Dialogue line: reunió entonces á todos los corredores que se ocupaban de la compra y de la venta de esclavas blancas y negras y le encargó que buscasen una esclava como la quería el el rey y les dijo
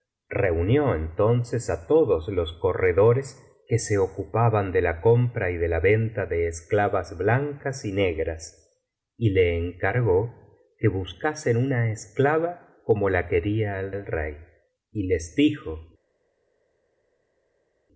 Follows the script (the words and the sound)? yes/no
yes